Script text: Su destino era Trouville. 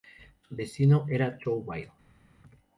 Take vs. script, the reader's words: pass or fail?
pass